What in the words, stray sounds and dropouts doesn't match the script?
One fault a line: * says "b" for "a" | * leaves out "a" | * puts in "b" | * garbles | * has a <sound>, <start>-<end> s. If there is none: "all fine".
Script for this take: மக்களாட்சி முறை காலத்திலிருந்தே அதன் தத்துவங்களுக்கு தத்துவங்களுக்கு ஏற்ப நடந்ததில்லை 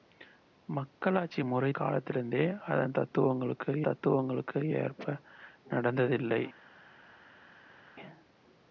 all fine